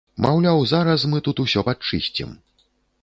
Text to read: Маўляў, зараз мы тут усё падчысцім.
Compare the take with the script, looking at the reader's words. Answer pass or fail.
pass